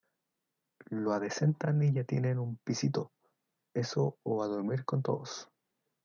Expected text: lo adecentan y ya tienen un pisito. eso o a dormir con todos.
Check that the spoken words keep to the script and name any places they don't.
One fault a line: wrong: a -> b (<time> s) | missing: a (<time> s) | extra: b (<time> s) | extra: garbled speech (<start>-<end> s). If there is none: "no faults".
no faults